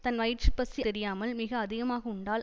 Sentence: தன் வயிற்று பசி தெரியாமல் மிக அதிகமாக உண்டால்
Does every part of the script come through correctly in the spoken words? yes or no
yes